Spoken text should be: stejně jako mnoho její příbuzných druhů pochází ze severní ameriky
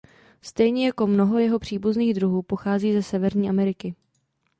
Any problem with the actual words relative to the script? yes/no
yes